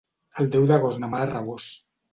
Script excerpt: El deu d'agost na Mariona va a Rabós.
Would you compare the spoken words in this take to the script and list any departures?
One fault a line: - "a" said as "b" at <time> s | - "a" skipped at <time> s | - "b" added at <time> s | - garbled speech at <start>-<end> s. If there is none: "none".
- "Mariona" skipped at 1.1 s